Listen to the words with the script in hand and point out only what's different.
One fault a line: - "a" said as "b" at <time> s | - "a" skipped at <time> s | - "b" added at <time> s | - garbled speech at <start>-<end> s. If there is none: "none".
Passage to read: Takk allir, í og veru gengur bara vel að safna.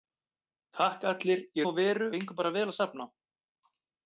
none